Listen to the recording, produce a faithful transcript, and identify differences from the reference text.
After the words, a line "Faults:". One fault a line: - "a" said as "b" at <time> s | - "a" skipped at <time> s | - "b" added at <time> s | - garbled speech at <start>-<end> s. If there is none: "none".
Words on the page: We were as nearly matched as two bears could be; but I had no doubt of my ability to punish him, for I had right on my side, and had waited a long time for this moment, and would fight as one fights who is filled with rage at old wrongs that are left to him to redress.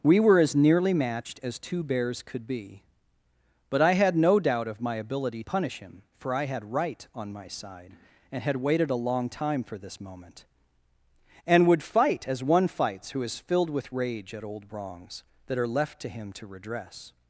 We were as nearly matched as two bears could be; but I had no doubt of my ability punish him, for I had right on my side, and had waited a long time for this moment, and would fight as one fights who is filled with rage at old wrongs that are left to him to redress.
Faults:
- "to" skipped at 5.4 s